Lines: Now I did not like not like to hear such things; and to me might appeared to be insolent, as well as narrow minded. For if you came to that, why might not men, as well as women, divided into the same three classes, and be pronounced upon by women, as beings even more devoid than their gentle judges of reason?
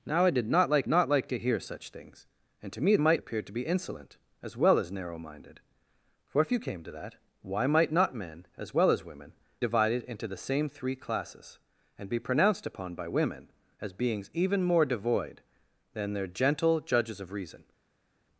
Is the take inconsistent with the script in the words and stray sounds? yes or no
no